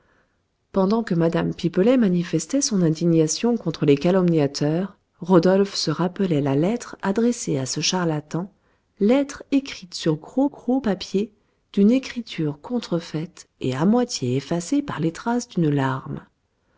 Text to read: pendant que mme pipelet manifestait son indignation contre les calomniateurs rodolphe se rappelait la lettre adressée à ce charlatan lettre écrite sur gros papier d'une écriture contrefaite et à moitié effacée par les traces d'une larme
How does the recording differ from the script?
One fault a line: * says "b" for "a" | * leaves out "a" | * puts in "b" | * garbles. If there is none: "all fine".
* puts in "gros"